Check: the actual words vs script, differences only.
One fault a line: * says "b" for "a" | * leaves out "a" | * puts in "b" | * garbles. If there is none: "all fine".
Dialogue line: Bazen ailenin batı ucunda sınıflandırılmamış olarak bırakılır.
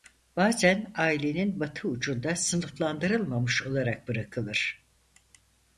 all fine